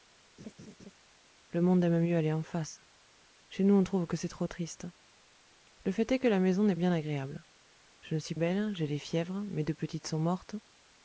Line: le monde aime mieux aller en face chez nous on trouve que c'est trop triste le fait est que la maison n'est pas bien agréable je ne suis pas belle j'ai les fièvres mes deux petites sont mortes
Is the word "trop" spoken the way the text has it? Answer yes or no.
yes